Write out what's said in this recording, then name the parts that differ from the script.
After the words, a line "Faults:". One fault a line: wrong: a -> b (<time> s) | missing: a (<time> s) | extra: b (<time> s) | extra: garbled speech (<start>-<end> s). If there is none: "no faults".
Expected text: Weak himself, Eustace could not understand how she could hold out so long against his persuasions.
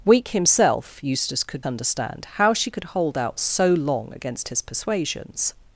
Weak himself, Eustace could understand how she could hold out so long against his persuasions.
Faults:
missing: not (1.7 s)